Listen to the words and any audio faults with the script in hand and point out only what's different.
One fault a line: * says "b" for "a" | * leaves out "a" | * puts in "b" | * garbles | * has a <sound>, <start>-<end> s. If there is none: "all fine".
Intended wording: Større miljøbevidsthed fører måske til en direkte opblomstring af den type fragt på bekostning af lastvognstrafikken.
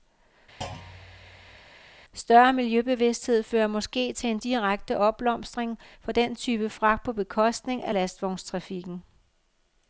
* has a thud, 0.6-1.7 s
* says "for" for "af"